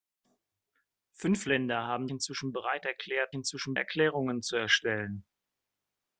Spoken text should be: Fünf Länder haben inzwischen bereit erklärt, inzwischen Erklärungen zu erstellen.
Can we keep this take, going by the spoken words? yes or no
yes